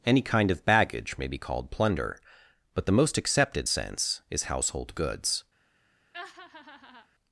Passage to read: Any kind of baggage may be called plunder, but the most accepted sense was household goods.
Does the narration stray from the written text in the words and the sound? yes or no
yes